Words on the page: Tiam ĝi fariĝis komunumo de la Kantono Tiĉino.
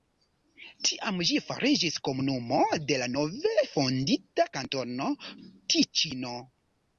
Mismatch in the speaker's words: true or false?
true